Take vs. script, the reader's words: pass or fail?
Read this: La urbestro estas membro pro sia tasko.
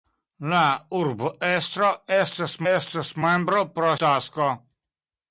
fail